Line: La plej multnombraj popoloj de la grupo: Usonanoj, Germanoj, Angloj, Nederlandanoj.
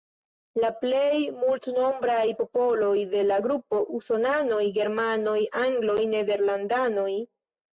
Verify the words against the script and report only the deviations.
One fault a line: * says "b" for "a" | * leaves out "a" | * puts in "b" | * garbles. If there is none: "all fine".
all fine